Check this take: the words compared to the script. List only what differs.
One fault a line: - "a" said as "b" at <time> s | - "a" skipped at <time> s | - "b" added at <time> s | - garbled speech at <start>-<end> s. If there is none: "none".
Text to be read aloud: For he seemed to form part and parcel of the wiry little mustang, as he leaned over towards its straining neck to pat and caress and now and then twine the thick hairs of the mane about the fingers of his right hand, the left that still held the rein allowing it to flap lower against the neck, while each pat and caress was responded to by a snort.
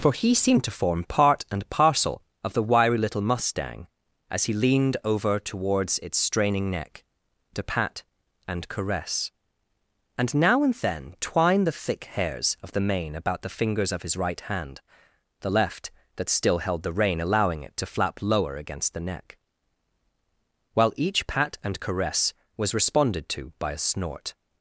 none